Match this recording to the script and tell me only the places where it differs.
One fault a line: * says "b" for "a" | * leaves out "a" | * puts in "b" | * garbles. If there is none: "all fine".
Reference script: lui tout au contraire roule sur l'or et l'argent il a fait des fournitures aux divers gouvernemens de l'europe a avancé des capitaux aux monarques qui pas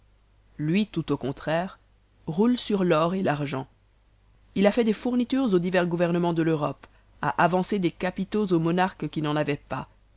* puts in "n'en avaient"